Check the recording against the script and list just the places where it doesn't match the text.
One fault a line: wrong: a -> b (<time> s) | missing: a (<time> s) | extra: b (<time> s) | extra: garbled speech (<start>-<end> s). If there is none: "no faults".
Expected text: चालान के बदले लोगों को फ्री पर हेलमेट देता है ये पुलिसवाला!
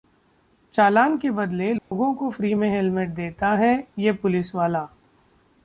wrong: पर -> में (2.5 s)